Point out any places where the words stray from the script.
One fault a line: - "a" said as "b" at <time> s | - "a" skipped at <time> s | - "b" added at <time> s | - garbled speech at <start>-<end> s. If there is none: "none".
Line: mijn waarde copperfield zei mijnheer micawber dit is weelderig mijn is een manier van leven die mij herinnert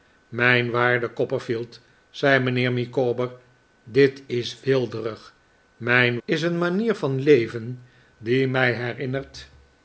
none